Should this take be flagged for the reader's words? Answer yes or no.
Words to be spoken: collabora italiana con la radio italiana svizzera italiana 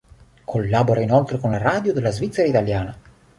yes